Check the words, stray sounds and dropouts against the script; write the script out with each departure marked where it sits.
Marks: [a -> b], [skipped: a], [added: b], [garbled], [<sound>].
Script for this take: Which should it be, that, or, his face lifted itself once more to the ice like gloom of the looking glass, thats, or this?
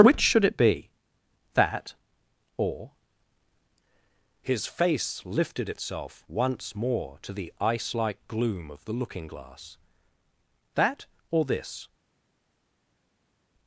Which should it be, that, or, his face lifted itself once more to the ice like gloom of the looking glass, [thats, -> that] or this?